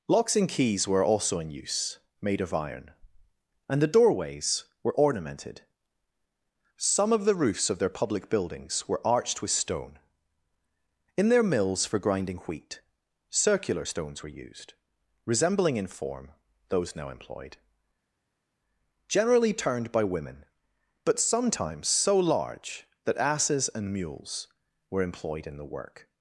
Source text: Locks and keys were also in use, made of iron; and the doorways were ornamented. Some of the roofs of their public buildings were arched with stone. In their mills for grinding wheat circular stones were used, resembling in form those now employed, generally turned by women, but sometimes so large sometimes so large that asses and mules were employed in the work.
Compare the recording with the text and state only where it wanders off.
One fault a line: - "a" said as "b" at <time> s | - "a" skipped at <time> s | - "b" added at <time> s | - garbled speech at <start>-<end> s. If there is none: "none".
- "sometimes so large" skipped at 22.8 s